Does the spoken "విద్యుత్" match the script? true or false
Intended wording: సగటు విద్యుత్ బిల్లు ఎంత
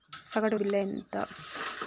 false